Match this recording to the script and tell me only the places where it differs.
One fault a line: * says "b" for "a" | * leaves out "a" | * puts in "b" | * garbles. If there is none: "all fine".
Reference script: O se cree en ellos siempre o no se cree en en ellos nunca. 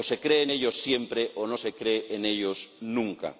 * leaves out "en"